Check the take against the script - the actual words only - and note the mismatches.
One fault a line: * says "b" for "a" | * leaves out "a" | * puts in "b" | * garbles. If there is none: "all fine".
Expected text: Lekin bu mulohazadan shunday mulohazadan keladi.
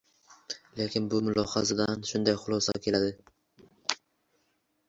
* says "xulosa" for "mulohazadan"